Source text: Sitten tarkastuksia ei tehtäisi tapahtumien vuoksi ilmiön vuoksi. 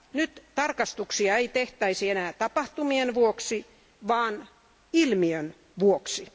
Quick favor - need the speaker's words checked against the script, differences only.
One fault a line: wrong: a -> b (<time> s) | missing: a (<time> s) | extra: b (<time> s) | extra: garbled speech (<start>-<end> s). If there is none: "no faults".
wrong: Sitten -> Nyt (0.1 s)
extra: enää (2.1 s)
extra: vaan (4.1 s)